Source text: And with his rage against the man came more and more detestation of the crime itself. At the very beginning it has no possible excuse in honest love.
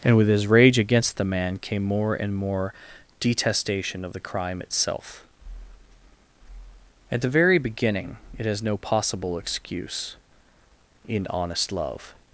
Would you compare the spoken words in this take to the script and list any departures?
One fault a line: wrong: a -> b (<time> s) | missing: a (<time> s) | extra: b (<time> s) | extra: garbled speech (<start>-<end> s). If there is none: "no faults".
no faults